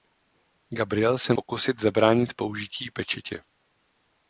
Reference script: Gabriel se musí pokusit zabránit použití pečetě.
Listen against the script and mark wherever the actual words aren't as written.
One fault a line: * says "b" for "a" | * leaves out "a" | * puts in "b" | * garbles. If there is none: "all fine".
* leaves out "musí"